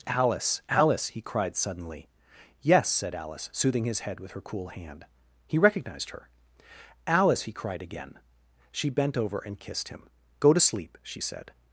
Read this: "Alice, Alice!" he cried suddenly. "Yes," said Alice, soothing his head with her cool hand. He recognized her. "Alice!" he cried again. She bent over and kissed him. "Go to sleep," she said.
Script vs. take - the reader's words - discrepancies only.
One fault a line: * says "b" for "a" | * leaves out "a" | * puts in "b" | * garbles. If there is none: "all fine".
all fine